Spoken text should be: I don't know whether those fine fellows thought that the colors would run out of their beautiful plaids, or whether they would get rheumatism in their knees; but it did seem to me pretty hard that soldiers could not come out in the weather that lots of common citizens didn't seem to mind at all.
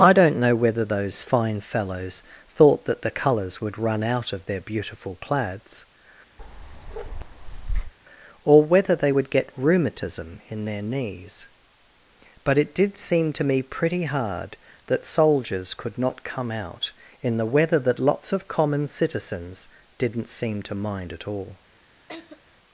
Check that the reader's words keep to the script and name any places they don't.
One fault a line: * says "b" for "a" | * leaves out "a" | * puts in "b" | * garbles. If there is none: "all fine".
all fine